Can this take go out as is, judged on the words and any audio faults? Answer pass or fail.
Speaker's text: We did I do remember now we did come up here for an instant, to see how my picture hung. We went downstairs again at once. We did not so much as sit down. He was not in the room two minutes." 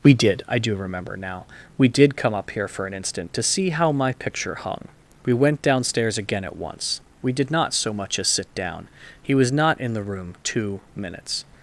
pass